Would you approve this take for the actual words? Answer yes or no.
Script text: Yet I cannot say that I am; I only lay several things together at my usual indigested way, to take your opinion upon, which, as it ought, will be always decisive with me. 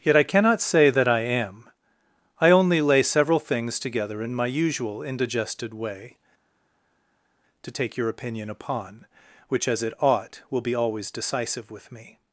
no